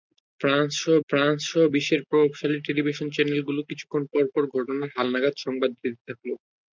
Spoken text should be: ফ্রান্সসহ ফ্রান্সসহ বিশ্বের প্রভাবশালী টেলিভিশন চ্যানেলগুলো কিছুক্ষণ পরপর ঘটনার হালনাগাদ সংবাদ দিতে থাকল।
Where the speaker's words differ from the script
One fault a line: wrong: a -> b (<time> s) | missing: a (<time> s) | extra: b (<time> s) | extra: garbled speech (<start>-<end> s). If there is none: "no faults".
no faults